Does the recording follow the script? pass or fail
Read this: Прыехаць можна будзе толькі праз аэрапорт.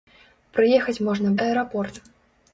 fail